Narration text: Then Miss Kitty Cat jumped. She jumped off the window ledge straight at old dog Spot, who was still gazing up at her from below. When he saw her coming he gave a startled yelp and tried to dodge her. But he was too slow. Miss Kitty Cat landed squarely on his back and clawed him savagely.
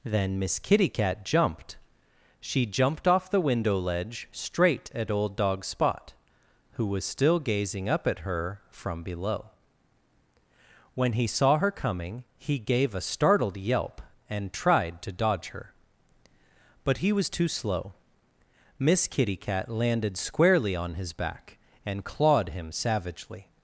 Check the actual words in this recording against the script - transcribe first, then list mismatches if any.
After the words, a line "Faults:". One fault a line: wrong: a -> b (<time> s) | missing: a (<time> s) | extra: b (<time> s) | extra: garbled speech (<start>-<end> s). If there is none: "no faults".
Then Miss Kitty Cat jumped. She jumped off the window ledge straight at old dog Spot, who was still gazing up at her from below. When he saw her coming he gave a startled yelp and tried to dodge her. But he was too slow. Miss Kitty Cat landed squarely on his back and clawed him savagely.
Faults:
no faults